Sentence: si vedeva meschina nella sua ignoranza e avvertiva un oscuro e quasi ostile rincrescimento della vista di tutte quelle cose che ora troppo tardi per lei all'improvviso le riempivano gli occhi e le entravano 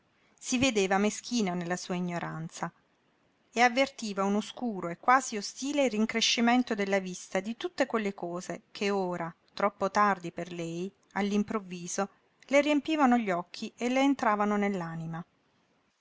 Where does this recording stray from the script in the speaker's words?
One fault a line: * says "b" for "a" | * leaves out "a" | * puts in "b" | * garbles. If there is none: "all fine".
all fine